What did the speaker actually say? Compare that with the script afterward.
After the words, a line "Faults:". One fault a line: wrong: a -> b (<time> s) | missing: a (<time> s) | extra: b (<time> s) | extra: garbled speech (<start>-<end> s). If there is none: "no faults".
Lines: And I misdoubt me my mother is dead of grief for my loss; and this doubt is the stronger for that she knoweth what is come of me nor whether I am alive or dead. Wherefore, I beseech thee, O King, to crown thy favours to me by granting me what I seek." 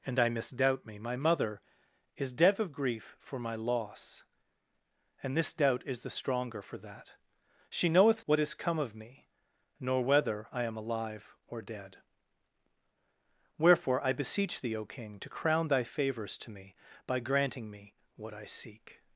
And I misdoubt me my mother is dead of grief for my loss; and this doubt is the stronger for that she knoweth what is come of me nor whether I am alive or dead. Wherefore, I beseech thee, O King, to crown thy favours to me by granting me what I seek."
Faults:
no faults